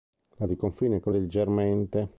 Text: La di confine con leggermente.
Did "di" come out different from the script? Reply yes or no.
no